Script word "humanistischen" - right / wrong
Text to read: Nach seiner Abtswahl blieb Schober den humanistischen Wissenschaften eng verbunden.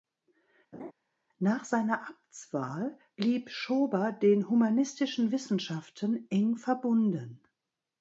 right